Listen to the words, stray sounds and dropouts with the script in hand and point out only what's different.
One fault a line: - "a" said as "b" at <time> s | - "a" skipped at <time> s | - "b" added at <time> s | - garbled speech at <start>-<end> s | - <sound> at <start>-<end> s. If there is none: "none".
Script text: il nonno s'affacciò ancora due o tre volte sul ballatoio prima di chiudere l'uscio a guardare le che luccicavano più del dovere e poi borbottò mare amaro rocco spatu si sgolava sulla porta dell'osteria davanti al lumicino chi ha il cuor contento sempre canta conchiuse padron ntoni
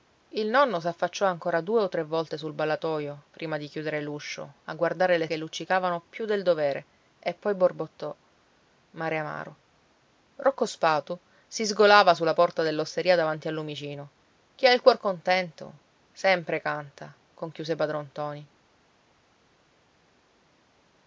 none